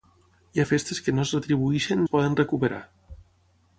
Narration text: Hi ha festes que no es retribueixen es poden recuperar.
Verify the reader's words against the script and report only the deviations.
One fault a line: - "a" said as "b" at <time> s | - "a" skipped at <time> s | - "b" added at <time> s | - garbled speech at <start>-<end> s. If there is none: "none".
none